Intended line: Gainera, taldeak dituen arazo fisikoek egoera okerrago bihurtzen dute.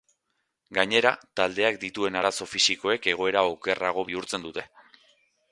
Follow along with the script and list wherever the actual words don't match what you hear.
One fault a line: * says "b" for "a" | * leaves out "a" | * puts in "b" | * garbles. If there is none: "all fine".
all fine